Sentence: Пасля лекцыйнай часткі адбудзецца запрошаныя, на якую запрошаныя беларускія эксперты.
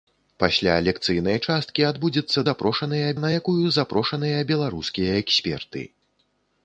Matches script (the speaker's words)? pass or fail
pass